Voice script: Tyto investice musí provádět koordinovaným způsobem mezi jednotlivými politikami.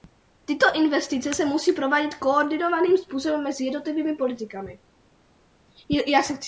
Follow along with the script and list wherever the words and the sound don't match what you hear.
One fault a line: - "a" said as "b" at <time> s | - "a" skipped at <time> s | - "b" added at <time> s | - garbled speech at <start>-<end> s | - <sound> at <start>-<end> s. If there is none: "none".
- "se" added at 1.3 s